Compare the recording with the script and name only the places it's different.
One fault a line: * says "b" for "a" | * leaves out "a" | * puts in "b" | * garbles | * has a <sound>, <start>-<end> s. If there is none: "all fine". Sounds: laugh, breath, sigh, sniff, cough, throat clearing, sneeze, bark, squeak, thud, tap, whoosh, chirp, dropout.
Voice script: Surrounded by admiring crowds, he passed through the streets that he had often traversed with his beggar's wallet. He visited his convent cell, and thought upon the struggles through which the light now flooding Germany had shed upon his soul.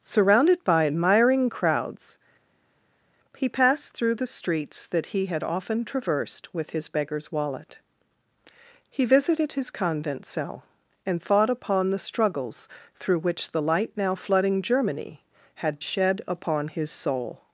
all fine